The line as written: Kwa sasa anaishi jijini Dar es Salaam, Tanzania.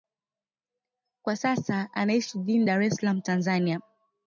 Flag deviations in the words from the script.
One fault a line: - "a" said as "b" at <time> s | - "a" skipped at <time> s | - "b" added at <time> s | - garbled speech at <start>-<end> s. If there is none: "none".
none